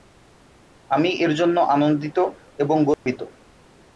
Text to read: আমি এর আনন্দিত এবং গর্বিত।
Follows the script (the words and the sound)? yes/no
no